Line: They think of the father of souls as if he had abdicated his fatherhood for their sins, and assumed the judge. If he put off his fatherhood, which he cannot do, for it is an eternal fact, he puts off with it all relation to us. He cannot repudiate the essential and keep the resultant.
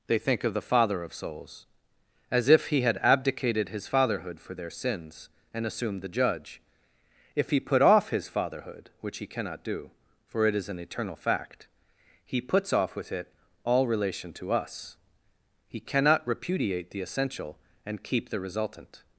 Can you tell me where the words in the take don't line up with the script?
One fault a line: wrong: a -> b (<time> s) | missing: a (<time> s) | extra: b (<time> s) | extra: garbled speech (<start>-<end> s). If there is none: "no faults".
no faults